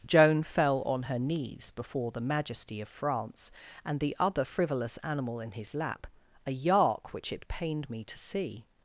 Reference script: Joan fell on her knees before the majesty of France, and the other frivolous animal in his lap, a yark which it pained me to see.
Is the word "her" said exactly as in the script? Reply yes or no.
yes